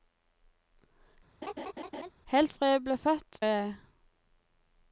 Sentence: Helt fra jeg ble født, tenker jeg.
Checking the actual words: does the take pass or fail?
fail